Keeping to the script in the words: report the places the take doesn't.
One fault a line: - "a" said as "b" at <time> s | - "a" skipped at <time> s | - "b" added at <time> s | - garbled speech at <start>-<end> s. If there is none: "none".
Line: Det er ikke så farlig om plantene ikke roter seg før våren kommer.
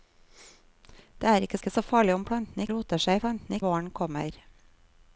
- "ikke" added at 1.6 s
- "ikke" skipped at 2.7 s
- "før" said as "plantene" at 3.2 s